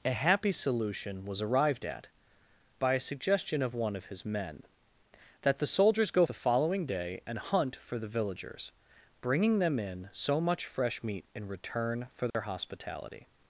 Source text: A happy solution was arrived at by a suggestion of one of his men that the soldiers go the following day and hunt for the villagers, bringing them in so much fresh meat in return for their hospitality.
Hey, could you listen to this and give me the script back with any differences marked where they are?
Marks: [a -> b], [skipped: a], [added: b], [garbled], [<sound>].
A happy solution was arrived at by a suggestion of one of his men that the soldiers go the following day and hunt for the villagers, bringing them in so much fresh meat in return for their [dropout] hospitality.